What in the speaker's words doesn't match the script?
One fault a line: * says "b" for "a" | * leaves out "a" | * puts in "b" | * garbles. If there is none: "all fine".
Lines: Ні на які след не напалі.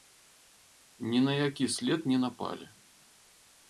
all fine